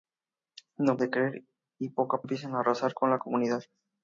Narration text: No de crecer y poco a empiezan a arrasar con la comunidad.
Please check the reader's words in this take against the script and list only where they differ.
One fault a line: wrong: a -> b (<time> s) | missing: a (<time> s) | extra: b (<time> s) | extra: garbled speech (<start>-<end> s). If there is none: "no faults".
no faults